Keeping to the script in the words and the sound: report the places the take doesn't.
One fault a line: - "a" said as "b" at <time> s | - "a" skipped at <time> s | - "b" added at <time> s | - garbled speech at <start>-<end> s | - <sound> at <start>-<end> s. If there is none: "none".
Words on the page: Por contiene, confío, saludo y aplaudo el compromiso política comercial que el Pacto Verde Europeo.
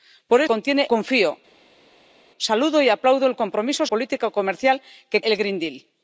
none